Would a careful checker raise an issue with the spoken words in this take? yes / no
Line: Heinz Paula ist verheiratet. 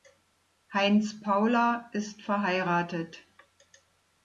no